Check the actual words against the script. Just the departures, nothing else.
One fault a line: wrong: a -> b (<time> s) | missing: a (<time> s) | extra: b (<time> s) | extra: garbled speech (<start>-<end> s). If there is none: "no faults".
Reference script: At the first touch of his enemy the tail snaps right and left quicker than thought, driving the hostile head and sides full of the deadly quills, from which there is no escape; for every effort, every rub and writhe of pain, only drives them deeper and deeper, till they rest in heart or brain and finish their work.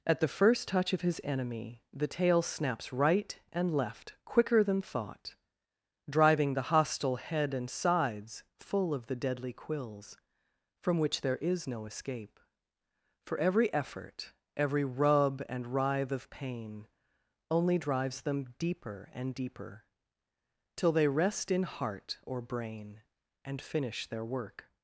no faults